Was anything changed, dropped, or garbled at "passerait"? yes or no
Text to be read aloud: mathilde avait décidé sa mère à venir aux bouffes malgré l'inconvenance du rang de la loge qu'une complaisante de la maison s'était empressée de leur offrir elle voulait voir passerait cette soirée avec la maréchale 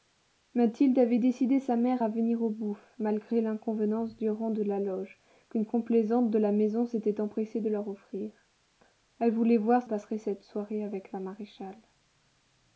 no